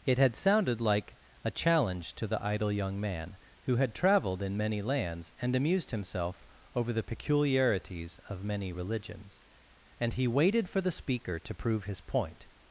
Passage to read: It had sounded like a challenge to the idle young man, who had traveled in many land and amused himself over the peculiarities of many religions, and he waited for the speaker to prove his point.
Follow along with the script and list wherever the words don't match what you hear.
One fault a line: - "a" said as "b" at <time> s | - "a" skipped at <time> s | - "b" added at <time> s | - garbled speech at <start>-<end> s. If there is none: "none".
- "land" said as "lands" at 4.8 s